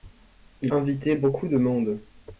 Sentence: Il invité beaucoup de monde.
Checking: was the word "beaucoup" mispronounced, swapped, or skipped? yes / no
no